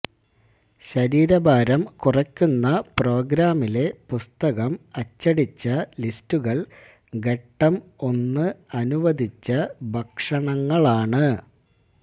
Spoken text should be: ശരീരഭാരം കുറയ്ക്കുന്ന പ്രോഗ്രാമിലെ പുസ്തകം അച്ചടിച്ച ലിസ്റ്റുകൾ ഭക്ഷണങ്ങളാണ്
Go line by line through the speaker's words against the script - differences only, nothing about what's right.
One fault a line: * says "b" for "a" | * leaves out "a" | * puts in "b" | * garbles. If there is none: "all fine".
* puts in "ഘട്ടം ഒന്ന് അനുവദിച്ച"